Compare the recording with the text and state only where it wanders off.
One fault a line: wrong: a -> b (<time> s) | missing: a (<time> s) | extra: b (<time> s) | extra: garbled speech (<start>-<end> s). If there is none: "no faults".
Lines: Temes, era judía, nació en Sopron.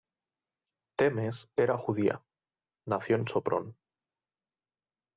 no faults